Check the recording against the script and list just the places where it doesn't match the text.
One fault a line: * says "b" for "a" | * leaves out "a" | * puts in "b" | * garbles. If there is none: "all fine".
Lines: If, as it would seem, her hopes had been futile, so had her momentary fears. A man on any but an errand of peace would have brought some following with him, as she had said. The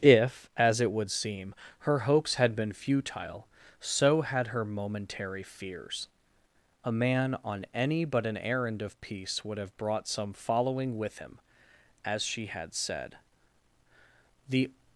all fine